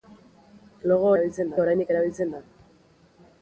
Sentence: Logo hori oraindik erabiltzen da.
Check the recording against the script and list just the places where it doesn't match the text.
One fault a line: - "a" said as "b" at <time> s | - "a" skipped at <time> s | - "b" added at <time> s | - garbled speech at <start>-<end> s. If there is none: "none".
- "hori" said as "erabiltzen" at 1.1 s